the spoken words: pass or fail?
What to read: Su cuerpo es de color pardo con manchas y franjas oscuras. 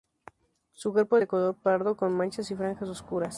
pass